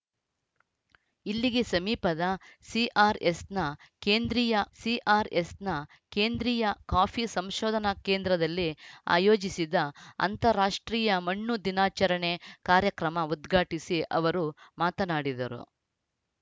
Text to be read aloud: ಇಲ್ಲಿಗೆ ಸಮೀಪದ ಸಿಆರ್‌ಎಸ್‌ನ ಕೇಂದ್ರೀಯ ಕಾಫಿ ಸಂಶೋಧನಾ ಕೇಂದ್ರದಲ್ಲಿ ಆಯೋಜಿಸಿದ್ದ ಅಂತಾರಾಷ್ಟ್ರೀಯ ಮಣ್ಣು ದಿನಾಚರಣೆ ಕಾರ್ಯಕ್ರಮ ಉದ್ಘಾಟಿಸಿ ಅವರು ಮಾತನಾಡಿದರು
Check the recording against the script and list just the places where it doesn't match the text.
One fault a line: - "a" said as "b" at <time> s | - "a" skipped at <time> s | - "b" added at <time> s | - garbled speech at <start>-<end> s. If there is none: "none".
- "ಸಿಆರ್‌ಎಸ್‌ನ ಕೇಂದ್ರೀಯ" added at 4.8 s